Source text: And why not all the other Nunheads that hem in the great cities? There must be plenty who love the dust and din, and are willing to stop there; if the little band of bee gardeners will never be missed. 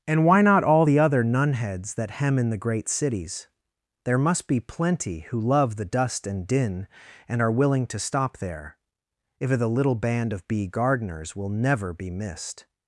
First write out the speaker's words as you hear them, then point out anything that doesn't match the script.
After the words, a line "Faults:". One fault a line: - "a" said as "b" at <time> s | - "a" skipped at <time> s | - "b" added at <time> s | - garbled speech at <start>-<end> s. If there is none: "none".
And why not all the other Nunheads that hem in the great cities? There must be plenty who love the dust and din, and are willing to stop there; if the little band of bee gardeners will never be missed.
Faults:
none